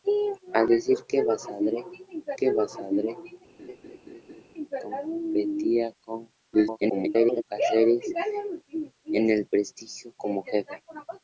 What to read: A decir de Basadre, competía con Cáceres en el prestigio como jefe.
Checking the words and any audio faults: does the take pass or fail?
fail